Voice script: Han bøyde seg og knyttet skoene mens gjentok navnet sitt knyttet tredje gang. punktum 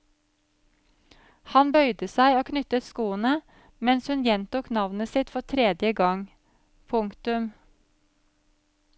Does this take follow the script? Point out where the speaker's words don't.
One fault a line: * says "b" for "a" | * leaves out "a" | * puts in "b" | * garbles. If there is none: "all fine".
* puts in "hun"
* says "for" for "knyttet"